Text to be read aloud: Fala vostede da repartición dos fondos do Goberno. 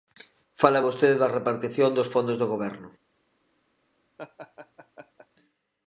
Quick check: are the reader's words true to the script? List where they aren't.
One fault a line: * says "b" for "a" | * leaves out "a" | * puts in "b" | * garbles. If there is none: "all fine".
all fine